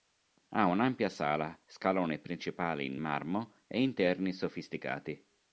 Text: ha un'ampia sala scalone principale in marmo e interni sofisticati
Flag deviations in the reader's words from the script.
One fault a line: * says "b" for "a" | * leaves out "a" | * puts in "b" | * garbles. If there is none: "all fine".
all fine